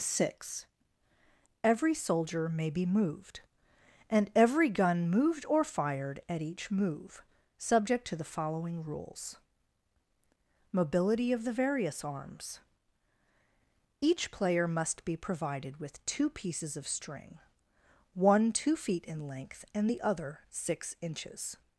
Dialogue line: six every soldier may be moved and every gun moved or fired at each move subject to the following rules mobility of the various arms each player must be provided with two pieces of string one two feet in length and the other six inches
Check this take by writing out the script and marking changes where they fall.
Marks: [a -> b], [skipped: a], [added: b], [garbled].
six every soldier may be moved and every gun moved or fired at each move subject to the following rules mobility of the various arms each player must be provided with two pieces of string one two feet in length and the other six inches